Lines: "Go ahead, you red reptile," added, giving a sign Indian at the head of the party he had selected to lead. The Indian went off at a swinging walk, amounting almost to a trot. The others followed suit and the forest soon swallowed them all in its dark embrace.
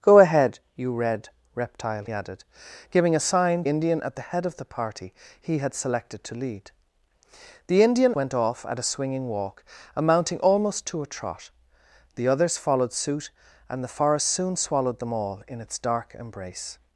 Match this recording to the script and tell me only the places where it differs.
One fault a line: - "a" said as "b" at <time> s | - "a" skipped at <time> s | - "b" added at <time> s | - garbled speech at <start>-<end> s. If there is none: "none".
none